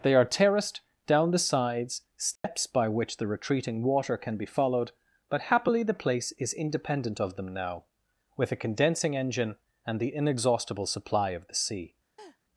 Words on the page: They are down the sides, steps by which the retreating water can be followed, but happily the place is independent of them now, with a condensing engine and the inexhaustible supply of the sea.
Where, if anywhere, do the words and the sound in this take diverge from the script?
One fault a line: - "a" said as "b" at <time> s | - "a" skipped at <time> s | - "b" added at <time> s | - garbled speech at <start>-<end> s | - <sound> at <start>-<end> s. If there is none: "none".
- "terraced" added at 0.2 s
- dropout at 2.4-2.4 s
- laugh at 12.2-12.4 s